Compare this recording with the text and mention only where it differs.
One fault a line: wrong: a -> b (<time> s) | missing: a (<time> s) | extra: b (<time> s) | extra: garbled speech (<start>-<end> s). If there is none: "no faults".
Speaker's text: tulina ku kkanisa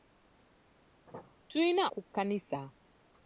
no faults